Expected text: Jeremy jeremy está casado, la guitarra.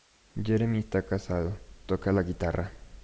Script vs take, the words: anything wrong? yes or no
yes